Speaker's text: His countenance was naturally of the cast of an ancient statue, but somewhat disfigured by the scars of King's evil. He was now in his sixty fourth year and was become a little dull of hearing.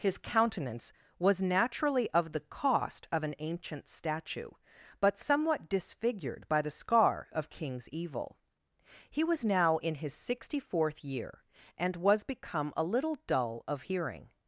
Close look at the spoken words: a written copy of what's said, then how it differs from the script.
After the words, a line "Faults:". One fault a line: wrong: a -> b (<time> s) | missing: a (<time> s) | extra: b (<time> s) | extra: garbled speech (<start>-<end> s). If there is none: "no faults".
His countenance was naturally of the cost of an ancient statue, but somewhat disfigured by the scar of King's evil. He was now in his sixty fourth year and was become a little dull of hearing.
Faults:
wrong: cast -> cost (2.4 s)
wrong: scars -> scar (6.7 s)